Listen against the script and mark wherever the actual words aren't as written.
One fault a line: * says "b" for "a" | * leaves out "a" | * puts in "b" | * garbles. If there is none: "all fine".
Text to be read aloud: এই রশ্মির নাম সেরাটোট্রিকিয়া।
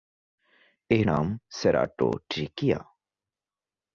* leaves out "রশ্মির"